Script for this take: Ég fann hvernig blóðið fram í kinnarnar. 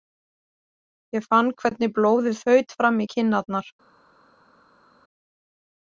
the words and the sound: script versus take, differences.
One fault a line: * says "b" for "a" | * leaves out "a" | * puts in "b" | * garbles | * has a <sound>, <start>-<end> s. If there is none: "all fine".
* puts in "þaut"